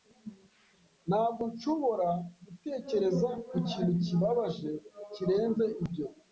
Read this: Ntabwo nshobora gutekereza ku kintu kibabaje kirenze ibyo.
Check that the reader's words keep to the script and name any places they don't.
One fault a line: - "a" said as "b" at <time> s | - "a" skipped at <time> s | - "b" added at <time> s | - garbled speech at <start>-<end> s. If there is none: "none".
none